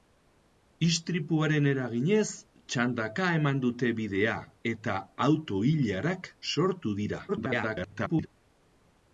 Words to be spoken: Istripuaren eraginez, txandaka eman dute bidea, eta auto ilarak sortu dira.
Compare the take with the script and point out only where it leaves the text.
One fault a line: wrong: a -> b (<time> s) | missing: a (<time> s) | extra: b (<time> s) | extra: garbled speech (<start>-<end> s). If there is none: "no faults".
extra: garbled speech (7.3-8.3 s)